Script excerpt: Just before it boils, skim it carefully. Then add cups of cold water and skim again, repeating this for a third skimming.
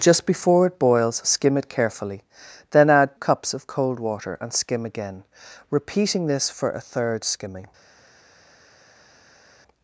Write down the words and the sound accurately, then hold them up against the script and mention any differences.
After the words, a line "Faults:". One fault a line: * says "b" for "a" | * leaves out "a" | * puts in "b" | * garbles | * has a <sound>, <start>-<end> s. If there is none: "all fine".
Just before it boils, skim it carefully. Then add cups of cold water and skim again, repeating this for a third skimming.
Faults:
all fine